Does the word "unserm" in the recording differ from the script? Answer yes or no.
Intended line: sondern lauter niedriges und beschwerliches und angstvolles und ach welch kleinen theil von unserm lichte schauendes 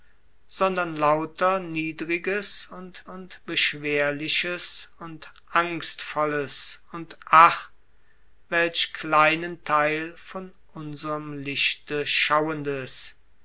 no